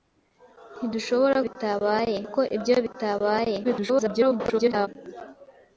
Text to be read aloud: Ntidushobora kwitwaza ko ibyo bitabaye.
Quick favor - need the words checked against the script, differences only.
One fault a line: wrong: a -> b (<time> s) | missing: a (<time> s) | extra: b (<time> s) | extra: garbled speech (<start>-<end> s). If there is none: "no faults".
wrong: kwitwaza -> bitabaye (1.4 s)
extra: garbled speech (3.6-4.9 s)